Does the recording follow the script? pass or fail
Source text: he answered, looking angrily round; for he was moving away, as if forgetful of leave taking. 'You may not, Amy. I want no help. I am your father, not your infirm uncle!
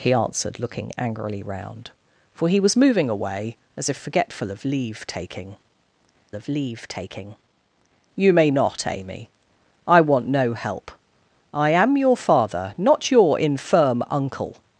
fail